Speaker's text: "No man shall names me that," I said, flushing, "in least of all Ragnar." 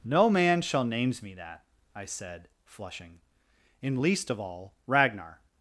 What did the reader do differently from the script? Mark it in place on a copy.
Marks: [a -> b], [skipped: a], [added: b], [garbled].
"No man shall names me that," I said, flushing, "in least of all Ragnar."